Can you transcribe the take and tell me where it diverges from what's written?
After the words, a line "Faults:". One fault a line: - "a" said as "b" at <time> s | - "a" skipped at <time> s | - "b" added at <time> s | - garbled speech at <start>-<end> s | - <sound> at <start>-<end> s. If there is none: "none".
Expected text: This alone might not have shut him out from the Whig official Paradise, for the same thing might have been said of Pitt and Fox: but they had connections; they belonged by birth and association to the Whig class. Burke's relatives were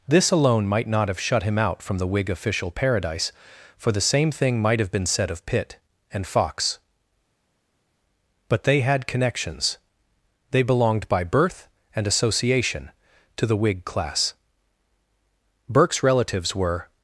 This alone might not have shut him out from the Whig official Paradise, for the same thing might have been said of Pitt and Fox: but they had connections; they belonged by birth and association to the Whig class. Burke's relatives were
Faults:
none